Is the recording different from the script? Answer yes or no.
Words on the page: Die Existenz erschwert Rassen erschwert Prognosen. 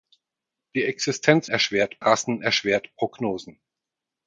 no